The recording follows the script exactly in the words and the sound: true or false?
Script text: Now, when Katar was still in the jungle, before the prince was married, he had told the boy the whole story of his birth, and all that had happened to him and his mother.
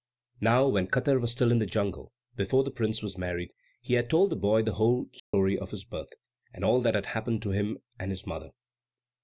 false